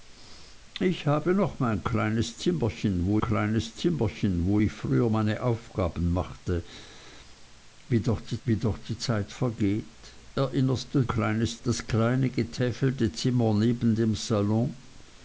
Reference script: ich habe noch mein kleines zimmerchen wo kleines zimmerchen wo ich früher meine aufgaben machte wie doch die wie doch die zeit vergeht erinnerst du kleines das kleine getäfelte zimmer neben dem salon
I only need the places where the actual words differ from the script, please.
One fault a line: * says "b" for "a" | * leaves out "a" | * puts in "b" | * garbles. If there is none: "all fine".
all fine